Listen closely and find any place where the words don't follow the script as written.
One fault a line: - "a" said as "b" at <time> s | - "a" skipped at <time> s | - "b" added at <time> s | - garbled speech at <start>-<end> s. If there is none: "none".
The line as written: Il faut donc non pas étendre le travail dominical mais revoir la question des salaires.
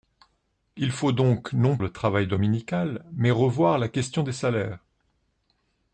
- "pas étendre" skipped at 1.8 s